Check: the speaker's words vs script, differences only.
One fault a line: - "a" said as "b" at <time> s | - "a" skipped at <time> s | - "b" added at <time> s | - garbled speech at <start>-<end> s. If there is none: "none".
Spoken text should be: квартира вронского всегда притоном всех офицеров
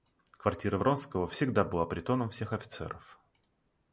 - "была" added at 1.6 s